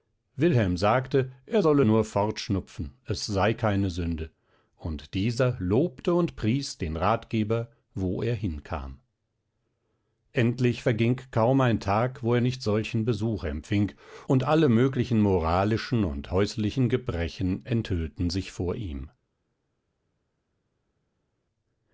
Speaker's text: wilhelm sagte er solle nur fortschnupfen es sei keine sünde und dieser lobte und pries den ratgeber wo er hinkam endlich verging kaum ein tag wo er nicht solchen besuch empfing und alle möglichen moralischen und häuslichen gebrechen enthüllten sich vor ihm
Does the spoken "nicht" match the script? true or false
true